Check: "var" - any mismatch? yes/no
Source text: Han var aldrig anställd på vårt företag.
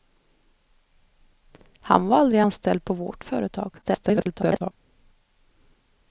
no